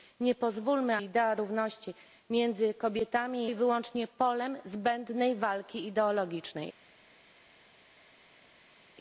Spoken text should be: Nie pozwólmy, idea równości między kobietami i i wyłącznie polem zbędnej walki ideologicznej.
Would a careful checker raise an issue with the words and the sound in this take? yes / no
no